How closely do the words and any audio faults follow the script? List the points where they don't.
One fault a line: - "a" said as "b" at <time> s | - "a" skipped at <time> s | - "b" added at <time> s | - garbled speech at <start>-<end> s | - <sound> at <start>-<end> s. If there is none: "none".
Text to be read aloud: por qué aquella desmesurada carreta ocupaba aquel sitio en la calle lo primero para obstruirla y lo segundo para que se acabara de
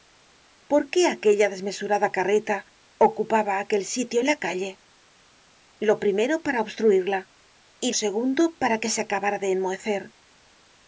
- "lo" skipped at 7.9 s